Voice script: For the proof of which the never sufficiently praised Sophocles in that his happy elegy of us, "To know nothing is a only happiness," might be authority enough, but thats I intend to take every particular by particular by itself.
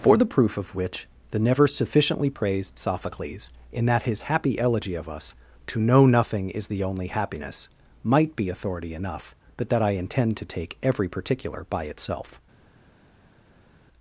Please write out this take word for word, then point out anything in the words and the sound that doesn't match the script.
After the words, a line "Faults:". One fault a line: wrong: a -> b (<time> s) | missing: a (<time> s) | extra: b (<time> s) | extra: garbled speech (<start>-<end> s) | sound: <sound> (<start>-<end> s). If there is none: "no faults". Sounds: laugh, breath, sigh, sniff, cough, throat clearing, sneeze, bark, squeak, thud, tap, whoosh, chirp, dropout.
For the proof of which the never sufficiently praised Sophocles in that his happy elegy of us, "To know nothing is the only happiness," might be authority enough, but that I intend to take every particular by itself.
Faults:
wrong: a -> the (6.7 s)
wrong: thats -> that (9.7 s)
missing: particular by (11.8 s)